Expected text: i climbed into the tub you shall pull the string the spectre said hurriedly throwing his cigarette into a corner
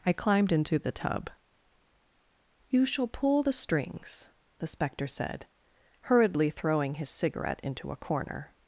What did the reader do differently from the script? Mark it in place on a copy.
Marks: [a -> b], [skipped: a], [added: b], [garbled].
i climbed into the tub you shall pull the [string -> strings] the spectre said hurriedly throwing his cigarette into a corner